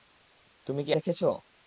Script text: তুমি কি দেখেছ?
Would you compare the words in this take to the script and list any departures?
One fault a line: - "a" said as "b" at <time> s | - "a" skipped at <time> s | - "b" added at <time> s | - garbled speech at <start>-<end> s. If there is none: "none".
none